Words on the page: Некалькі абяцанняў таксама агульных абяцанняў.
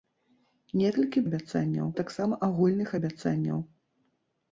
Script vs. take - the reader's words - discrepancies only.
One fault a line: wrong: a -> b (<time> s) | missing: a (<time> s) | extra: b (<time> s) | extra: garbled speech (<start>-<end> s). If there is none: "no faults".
no faults